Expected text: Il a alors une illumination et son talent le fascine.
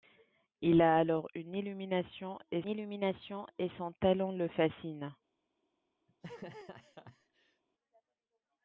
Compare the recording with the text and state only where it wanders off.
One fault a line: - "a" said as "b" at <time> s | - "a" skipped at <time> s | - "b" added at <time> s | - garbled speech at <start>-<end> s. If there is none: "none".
- "illumination et" added at 2.7 s